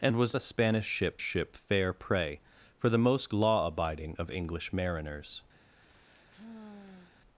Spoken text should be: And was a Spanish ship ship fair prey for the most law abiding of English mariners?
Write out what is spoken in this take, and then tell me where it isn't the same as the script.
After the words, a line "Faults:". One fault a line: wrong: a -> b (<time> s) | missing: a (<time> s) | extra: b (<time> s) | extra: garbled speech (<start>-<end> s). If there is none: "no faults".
And was a Spanish ship ship fair prey for the most law abiding of English mariners?
Faults:
no faults